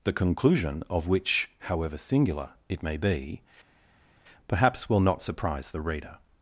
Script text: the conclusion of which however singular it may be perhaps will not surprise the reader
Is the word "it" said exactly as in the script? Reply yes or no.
yes